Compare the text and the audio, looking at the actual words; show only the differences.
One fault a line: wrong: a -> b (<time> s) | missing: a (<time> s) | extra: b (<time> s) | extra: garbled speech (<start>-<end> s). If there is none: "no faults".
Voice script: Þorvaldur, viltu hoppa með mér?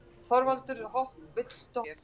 missing: hoppa með (1.9 s)